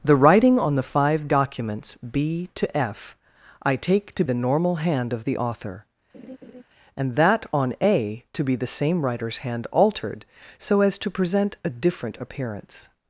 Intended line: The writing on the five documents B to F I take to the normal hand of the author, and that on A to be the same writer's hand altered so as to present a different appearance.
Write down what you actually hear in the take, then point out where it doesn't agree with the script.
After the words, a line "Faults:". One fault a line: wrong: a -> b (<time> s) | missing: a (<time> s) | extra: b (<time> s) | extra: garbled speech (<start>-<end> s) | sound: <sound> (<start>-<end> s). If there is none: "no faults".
The writing on the five documents B to F I take to the normal hand of the author, and that on A to be the same writer's hand altered so as to present a different appearance.
Faults:
sound: laugh (6.1-6.6 s)